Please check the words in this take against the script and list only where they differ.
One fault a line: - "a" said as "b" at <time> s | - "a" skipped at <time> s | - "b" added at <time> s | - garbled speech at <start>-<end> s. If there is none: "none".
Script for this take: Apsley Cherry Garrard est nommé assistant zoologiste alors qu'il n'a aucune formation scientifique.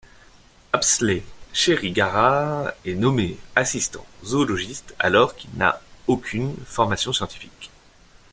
none